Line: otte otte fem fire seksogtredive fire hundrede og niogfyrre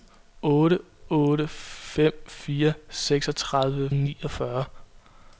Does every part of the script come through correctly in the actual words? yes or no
no